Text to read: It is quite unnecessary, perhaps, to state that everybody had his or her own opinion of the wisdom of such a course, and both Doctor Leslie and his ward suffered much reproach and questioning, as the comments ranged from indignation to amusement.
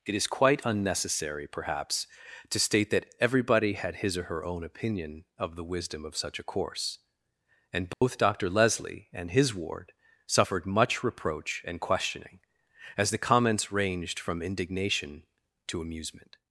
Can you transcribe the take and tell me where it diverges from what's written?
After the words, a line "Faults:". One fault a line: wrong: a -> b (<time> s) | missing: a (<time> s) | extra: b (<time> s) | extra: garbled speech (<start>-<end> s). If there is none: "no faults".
It is quite unnecessary, perhaps, to state that everybody had his or her own opinion of the wisdom of such a course, and both Doctor Leslie and his ward suffered much reproach and questioning, as the comments ranged from indignation to amusement.
Faults:
no faults